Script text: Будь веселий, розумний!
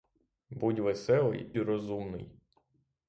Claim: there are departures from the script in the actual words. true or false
false